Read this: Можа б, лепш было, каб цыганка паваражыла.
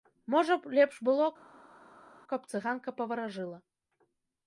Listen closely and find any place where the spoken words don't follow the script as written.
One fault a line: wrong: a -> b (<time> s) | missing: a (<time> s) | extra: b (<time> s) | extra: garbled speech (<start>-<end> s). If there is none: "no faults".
no faults